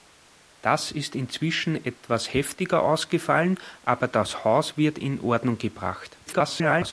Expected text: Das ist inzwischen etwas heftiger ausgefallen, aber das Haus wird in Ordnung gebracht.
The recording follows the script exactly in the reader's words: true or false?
false